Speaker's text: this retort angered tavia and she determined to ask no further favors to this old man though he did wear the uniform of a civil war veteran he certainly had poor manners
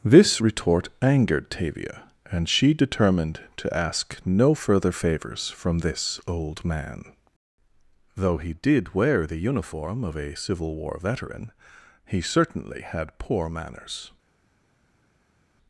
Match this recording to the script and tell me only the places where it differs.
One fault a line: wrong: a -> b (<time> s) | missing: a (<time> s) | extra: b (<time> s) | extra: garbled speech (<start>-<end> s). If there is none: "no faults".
wrong: to -> from (5.5 s)